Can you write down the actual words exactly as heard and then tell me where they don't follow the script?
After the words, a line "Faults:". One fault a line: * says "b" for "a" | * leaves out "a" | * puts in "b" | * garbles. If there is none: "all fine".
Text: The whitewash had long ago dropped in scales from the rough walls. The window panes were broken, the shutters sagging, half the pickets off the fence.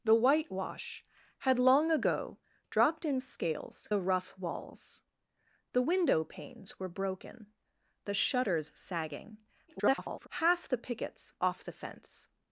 The whitewash had long ago dropped in scales the rough walls. The window panes were broken, the shutters sagging, [garbled] half the pickets off the fence.
Faults:
* leaves out "from"
* garbles